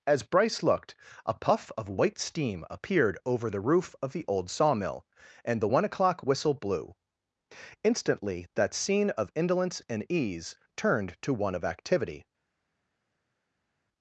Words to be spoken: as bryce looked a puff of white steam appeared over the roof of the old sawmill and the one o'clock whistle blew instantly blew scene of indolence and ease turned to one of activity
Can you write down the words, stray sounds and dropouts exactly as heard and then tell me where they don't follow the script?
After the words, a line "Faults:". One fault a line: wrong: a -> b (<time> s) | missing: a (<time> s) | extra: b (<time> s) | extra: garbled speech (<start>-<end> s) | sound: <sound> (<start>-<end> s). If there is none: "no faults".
as bryce looked a puff of white steam appeared over the roof of the old sawmill and the one o'clock whistle blew instantly that scene of indolence and ease turned to one of activity
Faults:
wrong: blew -> that (8.5 s)